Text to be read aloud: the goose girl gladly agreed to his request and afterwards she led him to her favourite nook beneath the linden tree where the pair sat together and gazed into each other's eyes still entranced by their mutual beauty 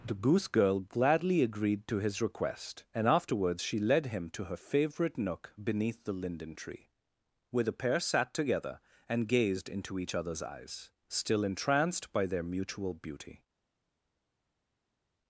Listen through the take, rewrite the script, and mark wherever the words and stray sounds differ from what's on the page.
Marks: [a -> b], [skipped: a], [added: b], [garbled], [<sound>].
the goose girl gladly agreed to his request and afterwards she led him to her favourite nook beneath the linden tree where the pair sat together and gazed into each other's eyes still entranced by their mutual beauty